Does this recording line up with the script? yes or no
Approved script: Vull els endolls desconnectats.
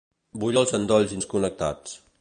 yes